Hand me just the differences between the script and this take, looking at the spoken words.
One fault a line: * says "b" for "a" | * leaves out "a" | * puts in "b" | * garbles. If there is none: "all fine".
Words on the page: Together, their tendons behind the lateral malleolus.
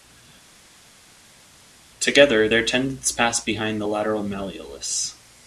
* puts in "pass"